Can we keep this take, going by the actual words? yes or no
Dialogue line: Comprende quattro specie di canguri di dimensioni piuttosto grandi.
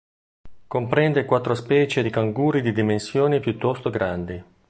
yes